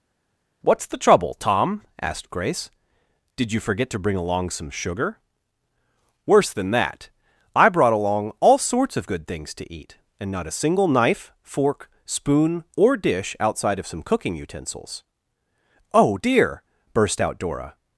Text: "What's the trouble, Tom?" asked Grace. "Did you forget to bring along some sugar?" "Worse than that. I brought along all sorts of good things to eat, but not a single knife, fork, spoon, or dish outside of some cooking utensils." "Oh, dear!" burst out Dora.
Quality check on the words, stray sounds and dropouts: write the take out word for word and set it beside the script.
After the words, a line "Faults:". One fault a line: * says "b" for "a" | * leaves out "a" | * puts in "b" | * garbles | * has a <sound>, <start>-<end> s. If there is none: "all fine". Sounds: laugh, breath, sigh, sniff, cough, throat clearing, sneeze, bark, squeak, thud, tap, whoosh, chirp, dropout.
"What's the trouble, Tom?" asked Grace. "Did you forget to bring along some sugar?" "Worse than that. I brought along all sorts of good things to eat, and not a single knife, fork, spoon, or dish outside of some cooking utensils." "Oh, dear!" burst out Dora.
Faults:
* says "and" for "but"